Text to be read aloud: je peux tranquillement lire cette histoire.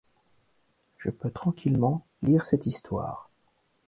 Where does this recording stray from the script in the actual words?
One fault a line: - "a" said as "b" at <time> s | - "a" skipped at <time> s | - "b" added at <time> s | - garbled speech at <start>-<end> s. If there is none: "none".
none